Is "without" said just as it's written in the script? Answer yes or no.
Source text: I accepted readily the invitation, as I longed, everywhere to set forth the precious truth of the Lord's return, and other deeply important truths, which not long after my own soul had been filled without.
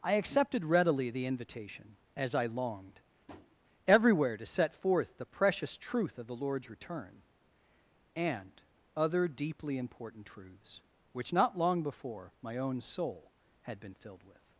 no